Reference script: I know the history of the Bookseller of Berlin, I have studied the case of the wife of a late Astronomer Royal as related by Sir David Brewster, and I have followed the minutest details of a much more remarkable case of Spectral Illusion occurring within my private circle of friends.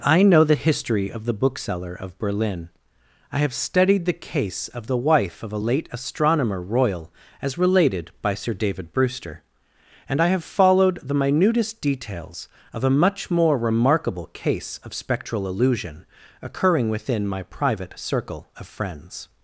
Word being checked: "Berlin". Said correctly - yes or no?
yes